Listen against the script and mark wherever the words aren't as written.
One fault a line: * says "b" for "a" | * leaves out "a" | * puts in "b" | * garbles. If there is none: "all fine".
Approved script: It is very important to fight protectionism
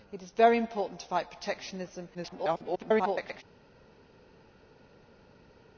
* garbles